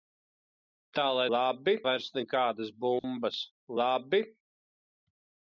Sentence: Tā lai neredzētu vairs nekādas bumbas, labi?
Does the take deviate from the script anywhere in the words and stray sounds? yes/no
yes